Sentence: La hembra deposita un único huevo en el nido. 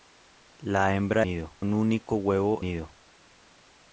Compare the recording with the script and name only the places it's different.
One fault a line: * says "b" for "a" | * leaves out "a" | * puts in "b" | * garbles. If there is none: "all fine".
* says "nido" for "deposita"
* leaves out "en el"